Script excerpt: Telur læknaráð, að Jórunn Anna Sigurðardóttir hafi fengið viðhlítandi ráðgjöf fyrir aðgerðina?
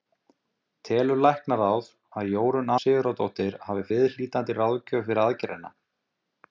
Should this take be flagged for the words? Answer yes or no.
yes